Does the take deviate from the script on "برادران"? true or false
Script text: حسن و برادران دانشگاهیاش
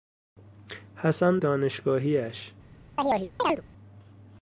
true